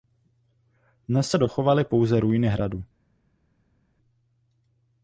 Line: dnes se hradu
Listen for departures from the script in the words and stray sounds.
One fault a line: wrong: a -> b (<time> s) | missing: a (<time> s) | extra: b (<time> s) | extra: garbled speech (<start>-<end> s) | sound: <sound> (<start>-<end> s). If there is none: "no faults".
extra: dochovaly pouze ruiny (1.4 s)